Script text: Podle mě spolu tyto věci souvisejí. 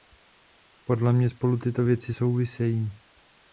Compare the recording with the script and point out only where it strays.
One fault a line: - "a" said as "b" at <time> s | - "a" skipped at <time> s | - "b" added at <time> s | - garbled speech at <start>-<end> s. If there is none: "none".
none